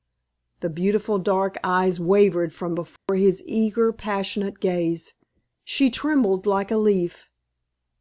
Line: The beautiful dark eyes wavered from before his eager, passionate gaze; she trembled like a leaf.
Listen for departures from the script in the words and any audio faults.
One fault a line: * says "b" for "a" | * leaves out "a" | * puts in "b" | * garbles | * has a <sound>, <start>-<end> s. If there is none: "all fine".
* has a dropout, 3.0-3.1 s